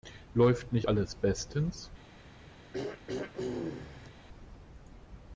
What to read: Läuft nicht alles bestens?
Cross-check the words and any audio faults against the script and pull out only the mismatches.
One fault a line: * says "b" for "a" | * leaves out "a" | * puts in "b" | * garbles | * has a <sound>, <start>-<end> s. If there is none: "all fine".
* has a throat clearing, 2.7-4.1 s